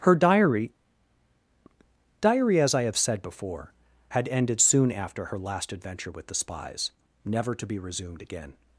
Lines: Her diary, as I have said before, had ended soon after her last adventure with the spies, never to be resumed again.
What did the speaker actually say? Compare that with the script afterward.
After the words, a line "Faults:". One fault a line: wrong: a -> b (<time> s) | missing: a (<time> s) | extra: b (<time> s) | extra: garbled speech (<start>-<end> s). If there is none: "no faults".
Her diary diary, as I have said before, had ended soon after her last adventure with the spies, never to be resumed again.
Faults:
extra: diary (2.2 s)